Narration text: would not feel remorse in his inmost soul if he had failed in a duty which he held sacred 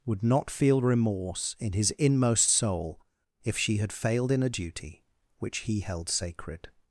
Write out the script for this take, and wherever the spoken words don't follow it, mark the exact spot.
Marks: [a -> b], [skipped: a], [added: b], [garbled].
would not feel remorse in his inmost soul if [he -> she] had failed in a duty which he held sacred